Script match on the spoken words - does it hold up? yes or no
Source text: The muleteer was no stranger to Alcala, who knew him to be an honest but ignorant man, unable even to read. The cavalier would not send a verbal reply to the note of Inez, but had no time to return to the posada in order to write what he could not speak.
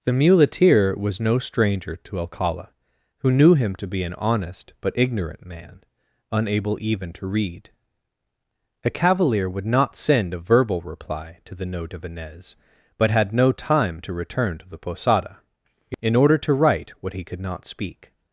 no